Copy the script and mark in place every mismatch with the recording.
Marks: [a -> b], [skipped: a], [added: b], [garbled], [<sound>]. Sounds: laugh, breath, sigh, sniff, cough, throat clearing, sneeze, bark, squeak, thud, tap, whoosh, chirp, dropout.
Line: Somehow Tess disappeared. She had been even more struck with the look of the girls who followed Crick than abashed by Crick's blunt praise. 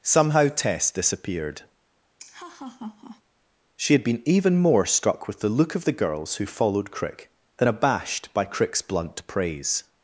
Somehow Tess disappeared. [laugh] She had been even more struck with the look of the girls who followed Crick than abashed by Crick's blunt praise.